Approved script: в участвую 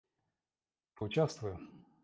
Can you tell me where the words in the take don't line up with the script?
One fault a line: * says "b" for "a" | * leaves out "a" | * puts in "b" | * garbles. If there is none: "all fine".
all fine